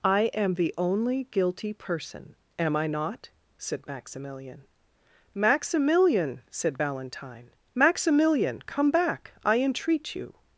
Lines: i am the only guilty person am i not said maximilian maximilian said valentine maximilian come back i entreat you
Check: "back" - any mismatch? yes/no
no